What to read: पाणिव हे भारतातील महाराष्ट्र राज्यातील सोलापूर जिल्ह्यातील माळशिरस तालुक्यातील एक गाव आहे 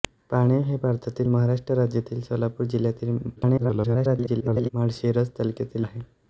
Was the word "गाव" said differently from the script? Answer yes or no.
yes